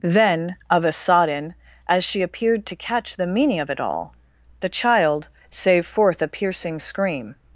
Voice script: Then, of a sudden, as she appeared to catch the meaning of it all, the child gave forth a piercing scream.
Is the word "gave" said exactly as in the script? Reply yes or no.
no